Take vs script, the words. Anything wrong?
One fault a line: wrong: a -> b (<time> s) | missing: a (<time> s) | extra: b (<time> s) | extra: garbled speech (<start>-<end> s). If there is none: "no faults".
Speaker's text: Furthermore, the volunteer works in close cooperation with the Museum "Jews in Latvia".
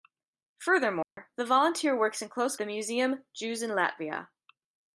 missing: cooperation with (2.6 s)